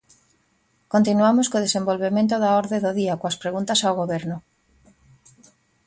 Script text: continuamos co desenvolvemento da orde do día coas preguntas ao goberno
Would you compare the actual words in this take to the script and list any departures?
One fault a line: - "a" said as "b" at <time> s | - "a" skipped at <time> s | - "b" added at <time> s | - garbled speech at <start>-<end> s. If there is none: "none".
none